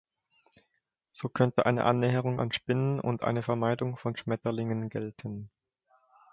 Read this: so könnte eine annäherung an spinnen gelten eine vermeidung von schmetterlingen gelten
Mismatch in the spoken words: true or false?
true